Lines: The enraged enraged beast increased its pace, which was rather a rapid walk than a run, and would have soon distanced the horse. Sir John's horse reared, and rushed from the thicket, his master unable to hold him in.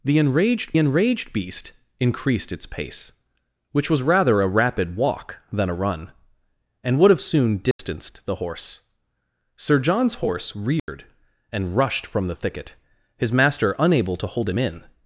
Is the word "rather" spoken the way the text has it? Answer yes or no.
yes